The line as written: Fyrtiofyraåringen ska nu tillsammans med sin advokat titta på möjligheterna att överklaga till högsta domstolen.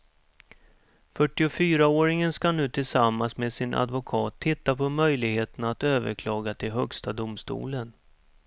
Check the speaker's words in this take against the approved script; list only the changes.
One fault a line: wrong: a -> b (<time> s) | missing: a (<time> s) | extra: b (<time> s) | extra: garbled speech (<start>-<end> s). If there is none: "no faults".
no faults